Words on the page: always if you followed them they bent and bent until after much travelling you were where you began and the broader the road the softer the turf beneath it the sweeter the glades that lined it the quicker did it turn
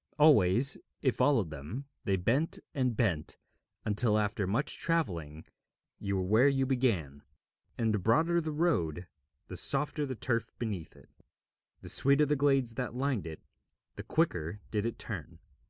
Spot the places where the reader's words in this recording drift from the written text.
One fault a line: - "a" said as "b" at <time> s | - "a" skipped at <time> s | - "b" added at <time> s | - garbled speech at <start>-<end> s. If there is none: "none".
- "you" skipped at 1.2 s